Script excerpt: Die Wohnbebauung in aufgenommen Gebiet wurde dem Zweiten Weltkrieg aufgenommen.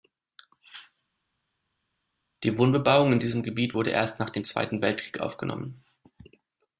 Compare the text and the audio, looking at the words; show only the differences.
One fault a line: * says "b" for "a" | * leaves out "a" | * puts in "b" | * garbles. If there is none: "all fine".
* says "diesem" for "aufgenommen"
* puts in "erst nach"